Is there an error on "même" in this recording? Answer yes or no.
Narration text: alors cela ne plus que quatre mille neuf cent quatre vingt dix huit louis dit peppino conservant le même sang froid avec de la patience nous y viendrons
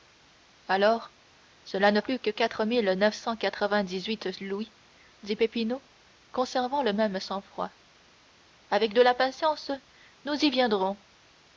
no